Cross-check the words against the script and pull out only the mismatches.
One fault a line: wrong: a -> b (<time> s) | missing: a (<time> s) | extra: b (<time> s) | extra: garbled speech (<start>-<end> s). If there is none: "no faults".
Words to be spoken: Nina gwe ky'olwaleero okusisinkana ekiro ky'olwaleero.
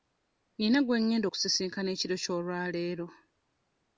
wrong: ky'olwaleero -> ngenda (1.0 s)